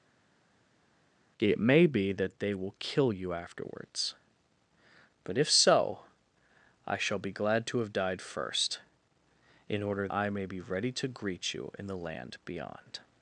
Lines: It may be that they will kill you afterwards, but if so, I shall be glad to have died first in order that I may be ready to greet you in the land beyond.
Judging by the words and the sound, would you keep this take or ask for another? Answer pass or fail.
fail